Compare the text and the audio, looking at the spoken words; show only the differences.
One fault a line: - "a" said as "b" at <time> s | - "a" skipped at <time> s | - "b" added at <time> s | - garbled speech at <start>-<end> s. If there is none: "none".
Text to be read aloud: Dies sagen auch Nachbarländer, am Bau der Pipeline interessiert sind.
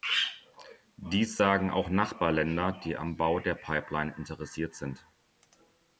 - "die" added at 2.7 s